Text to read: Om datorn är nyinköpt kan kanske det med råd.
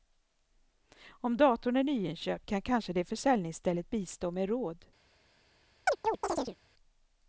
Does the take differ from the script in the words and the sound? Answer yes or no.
yes